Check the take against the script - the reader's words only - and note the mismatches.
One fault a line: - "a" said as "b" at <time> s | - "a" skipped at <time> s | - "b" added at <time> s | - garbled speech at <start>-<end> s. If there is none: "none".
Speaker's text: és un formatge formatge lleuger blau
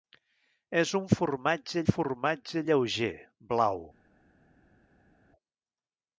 none